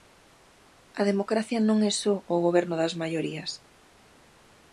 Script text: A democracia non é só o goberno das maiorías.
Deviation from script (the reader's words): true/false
false